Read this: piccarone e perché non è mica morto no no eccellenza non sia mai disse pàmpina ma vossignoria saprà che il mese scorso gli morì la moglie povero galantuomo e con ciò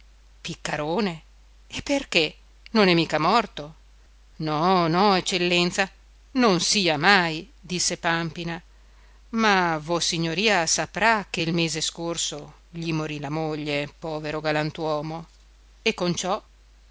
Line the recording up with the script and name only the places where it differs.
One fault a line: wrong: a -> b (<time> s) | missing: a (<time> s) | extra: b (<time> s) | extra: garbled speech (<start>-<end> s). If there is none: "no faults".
no faults